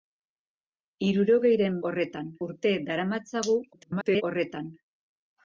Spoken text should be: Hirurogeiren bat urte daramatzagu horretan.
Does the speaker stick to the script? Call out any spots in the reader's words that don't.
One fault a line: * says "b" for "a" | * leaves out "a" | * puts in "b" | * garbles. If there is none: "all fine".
* says "horretan" for "bat"
* garbles